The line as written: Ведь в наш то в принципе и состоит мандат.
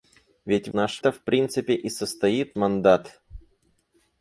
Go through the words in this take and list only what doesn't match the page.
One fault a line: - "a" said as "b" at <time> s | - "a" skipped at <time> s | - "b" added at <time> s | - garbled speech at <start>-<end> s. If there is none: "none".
none